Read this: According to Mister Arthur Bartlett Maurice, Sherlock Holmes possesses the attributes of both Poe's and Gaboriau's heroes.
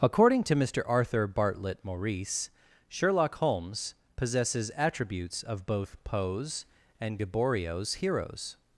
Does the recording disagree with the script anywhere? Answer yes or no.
yes